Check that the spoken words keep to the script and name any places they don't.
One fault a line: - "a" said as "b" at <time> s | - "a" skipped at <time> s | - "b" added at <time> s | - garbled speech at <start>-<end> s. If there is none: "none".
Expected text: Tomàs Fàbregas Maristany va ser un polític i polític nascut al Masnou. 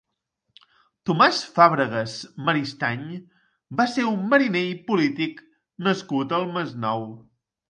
- "polític" said as "mariner" at 4.3 s